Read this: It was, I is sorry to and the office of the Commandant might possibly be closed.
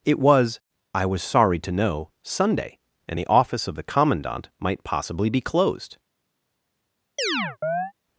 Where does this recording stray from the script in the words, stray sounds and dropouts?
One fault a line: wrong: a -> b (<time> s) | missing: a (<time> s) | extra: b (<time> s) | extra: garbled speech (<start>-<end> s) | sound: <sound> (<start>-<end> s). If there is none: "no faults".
wrong: is -> was (1.1 s)
extra: know Sunday (1.7 s)
sound: chirp (7.2-7.9 s)